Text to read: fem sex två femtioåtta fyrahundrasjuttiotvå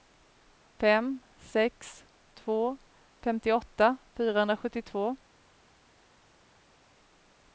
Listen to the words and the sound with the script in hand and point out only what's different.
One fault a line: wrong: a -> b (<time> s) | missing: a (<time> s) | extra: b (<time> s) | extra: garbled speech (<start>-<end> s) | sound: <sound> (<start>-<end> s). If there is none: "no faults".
no faults